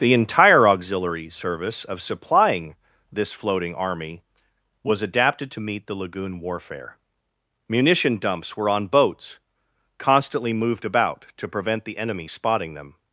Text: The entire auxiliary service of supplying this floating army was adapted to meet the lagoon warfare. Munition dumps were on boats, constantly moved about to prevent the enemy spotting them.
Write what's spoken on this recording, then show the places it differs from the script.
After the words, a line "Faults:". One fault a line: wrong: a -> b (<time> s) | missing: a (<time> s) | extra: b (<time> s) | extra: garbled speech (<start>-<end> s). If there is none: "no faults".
The entire auxiliary service of supplying this floating army was adapted to meet the lagoon warfare. Munition dumps were on boats, constantly moved about to prevent the enemy spotting them.
Faults:
no faults